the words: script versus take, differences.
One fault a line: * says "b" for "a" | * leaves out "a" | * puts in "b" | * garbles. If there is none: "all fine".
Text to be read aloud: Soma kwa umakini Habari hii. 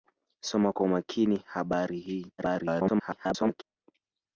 * garbles